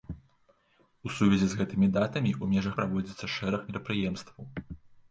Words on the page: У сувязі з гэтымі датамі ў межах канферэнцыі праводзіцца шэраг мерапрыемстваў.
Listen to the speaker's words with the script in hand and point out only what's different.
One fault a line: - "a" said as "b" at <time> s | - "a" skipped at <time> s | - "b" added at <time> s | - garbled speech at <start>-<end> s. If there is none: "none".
- "канферэнцыі" skipped at 2.8 s